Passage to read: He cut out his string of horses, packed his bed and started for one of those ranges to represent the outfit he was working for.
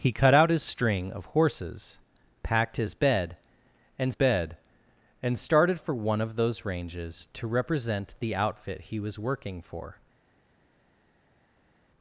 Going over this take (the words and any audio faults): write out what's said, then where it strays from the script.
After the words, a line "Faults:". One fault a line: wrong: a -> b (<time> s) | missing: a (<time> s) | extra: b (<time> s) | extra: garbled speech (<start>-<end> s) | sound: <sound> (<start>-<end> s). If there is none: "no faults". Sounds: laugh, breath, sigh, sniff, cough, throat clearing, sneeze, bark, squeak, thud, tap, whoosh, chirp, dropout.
He cut out his string of horses, packed his bed and bed and started for one of those ranges to represent the outfit he was working for.
Faults:
extra: bed and (4.1 s)